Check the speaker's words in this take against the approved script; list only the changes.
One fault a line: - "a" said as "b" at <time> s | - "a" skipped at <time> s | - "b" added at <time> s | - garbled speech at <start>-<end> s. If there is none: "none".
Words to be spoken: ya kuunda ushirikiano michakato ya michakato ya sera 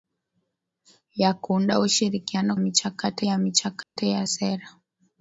none